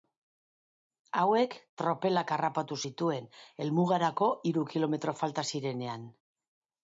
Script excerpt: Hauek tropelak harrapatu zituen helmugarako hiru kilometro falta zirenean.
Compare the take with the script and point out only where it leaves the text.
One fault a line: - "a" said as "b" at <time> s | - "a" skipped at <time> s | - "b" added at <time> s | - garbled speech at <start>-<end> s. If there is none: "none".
none